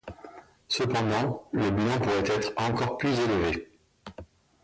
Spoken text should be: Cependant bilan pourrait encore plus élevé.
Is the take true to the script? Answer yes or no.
no